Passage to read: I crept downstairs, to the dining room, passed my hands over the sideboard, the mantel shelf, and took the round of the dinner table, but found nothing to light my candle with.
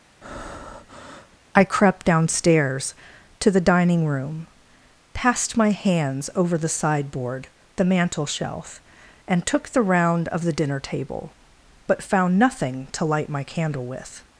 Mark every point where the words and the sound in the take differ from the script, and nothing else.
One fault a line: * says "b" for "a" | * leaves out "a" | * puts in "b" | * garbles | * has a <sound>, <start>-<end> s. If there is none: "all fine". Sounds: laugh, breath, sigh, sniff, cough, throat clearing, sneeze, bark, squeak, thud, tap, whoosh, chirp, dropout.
* has a breath, 0.2-1.4 s